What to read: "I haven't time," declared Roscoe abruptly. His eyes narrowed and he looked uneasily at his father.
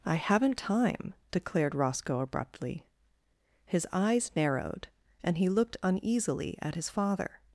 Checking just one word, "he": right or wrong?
right